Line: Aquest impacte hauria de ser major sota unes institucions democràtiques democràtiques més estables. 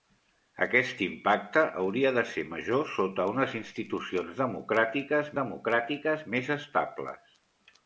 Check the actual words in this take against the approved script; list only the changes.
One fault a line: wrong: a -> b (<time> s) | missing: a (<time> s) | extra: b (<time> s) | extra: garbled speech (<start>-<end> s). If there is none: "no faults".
no faults